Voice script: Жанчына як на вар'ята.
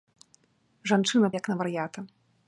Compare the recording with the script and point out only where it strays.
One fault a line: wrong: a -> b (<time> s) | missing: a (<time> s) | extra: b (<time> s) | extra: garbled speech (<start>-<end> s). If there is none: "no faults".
no faults